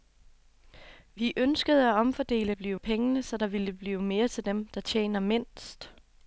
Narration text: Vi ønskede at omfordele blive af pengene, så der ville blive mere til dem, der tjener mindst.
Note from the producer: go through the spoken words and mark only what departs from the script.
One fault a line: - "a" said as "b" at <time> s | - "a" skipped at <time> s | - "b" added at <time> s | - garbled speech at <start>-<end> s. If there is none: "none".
none